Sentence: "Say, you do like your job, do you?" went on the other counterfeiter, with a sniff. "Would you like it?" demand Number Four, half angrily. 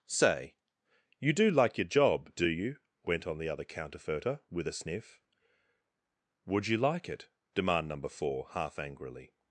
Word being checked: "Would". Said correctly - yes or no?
yes